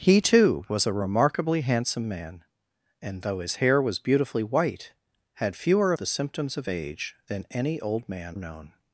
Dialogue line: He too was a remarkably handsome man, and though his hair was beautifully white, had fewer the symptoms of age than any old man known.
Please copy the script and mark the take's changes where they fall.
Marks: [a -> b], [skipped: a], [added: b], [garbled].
He too was a remarkably handsome man, and though his hair was beautifully white, had fewer the symptoms of age than any old man known.